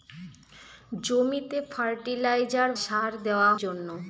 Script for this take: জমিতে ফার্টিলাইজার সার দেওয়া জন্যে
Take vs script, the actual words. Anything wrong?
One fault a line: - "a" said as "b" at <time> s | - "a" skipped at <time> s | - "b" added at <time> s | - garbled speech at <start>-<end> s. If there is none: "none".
none